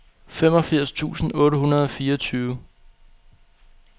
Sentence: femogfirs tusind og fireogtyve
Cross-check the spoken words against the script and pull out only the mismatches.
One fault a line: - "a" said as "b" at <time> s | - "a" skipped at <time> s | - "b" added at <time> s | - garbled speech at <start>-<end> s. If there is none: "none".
- "otte hundrede" added at 1.4 s